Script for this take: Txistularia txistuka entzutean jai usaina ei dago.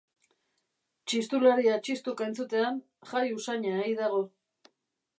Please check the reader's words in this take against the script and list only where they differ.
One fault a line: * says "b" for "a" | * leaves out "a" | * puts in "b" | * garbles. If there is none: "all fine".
all fine